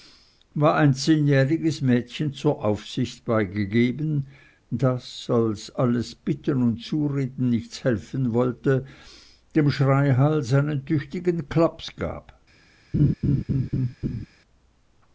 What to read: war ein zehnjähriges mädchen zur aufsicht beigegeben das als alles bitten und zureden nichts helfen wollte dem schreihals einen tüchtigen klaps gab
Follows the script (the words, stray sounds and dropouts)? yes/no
no